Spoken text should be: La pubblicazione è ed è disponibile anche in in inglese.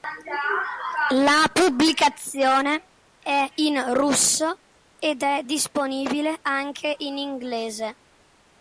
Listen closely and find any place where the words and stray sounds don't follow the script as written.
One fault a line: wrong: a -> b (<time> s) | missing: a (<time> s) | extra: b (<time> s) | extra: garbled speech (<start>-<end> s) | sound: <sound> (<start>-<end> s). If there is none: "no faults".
extra: in russo (3.5 s)
missing: in (7.2 s)